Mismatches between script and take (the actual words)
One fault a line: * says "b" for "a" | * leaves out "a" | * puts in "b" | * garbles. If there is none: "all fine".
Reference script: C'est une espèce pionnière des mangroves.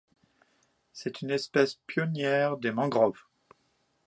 all fine